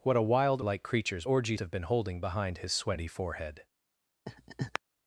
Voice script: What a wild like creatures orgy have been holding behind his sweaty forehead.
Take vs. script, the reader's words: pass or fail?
pass